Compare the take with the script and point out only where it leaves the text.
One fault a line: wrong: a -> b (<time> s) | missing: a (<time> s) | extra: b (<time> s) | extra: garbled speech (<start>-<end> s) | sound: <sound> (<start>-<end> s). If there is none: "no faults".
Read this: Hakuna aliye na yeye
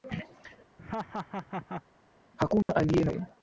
sound: laugh (0.8-1.8 s)
sound: dropout (2.6-2.7 s)